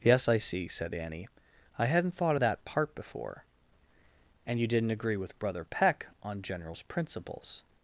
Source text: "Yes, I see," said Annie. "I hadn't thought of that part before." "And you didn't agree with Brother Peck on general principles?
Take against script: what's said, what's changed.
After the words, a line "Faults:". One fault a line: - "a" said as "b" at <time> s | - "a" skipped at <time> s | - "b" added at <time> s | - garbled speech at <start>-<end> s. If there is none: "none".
"Yes, I see," said Annie. "I hadn't thought of that part before." "And you didn't agree with Brother Peck on generals principles?
Faults:
- "general" said as "generals" at 6.4 s